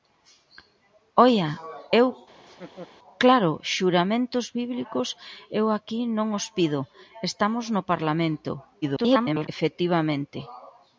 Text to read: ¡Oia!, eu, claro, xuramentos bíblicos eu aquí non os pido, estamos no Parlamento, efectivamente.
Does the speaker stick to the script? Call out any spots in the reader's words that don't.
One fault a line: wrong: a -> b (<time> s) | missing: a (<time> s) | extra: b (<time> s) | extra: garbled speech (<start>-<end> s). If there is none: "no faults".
extra: garbled speech (8.8-9.5 s)